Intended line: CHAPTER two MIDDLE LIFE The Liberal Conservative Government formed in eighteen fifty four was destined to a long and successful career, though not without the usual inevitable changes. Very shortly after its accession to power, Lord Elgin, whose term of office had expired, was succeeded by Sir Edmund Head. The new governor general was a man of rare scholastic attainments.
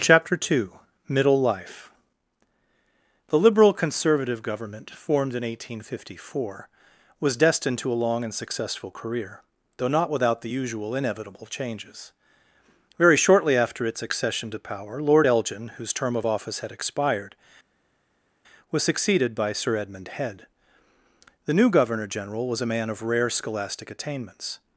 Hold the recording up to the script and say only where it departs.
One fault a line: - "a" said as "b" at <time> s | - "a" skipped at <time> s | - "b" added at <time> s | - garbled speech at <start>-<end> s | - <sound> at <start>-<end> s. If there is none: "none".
none